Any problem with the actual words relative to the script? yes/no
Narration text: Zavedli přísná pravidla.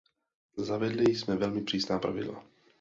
yes